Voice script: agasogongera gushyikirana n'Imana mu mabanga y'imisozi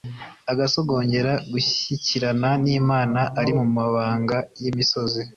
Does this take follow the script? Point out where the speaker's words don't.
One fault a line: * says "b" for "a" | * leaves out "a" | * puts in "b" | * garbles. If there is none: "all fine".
* puts in "ari"